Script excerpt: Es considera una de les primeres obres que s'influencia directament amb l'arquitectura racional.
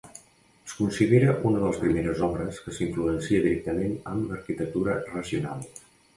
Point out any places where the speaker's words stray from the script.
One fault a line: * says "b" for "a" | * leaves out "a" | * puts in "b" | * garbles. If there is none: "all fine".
all fine